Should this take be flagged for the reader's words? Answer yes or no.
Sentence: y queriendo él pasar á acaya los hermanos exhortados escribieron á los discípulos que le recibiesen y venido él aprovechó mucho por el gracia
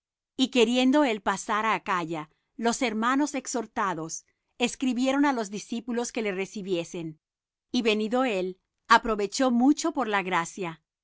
yes